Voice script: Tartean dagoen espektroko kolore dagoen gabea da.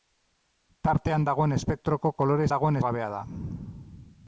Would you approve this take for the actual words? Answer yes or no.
yes